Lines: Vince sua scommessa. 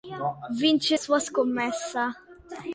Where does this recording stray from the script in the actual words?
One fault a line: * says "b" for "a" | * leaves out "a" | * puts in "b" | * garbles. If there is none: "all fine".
all fine